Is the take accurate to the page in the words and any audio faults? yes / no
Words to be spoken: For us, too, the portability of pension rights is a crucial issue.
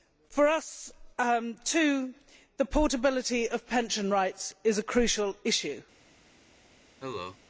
no